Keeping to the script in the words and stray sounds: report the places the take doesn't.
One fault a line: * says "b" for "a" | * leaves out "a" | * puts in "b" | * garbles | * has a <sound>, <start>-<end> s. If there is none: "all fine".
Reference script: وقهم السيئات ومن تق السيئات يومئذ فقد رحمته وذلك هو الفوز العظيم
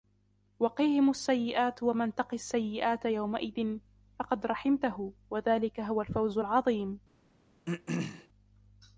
* has a throat clearing, 7.7-8.3 s